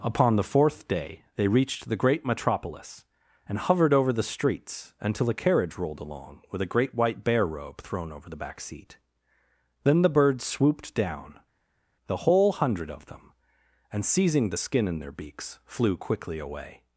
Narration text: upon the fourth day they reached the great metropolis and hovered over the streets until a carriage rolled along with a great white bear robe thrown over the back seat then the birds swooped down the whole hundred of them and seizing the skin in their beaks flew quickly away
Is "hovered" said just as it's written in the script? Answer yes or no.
yes